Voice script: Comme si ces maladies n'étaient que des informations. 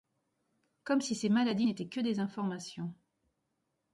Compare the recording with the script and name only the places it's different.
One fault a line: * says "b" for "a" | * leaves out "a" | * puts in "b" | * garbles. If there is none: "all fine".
all fine